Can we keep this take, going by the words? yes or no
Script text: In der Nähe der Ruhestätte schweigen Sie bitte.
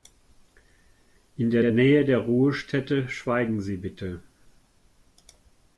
no